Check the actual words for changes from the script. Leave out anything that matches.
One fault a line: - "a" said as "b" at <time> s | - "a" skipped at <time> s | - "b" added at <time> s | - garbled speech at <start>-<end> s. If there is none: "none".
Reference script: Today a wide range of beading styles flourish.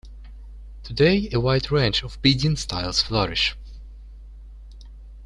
none